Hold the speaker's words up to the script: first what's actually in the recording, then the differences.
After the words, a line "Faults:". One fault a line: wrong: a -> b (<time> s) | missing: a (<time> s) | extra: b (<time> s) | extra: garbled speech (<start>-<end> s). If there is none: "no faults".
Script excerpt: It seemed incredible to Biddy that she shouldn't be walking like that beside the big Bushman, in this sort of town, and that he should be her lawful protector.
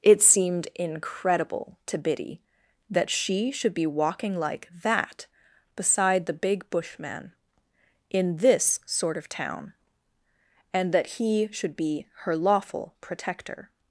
It seemed incredible to Biddy that she should be walking like that beside the big Bushman, in this sort of town, and that he should be her lawful protector.
Faults:
wrong: shouldn't -> should (3.5 s)